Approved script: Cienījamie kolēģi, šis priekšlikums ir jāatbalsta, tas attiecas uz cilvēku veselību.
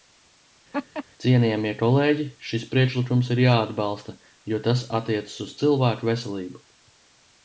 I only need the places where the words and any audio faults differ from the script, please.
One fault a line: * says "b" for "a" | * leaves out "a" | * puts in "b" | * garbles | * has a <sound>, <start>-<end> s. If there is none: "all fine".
* has a laugh, 0.7-1.0 s
* puts in "jo"